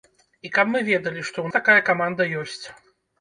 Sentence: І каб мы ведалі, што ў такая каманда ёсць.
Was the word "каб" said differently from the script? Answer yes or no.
no